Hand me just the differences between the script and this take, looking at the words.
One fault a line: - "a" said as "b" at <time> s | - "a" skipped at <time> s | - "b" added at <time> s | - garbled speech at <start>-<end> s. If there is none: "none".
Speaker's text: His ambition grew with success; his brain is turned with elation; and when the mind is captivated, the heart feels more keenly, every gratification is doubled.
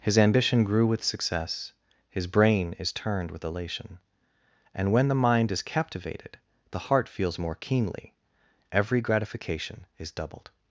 none